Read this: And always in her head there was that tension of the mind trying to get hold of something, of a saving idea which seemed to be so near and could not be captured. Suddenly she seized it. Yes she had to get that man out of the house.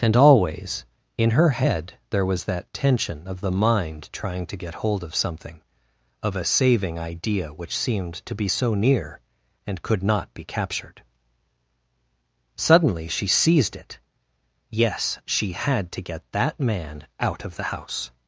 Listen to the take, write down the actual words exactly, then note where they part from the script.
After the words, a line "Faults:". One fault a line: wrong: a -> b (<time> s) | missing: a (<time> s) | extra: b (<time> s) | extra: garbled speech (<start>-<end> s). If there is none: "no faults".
And always in her head there was that tension of the mind trying to get hold of something, of a saving idea which seemed to be so near and could not be captured. Suddenly she seized it. Yes she had to get that man out of the house.
Faults:
no faults